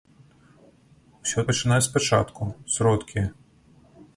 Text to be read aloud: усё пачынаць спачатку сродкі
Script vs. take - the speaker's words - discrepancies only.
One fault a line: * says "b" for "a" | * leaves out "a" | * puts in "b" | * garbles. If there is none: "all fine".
all fine